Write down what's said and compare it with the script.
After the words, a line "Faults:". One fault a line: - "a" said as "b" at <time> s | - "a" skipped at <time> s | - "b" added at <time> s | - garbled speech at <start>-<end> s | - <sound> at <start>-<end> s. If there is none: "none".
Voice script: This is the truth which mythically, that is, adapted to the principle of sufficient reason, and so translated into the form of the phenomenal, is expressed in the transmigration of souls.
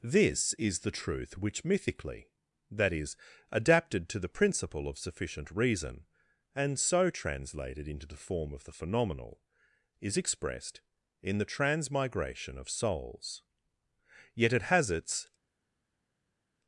This is the truth which mythically, that is, adapted to the principle of sufficient reason, and so translated into the form of the phenomenal, is expressed in the transmigration of souls. Yet it has its
Faults:
- "Yet it has its" added at 14.3 s